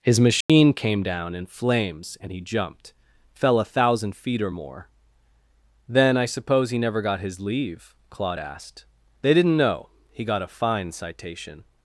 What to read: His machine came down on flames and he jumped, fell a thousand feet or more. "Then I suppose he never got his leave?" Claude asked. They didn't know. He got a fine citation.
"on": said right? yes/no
no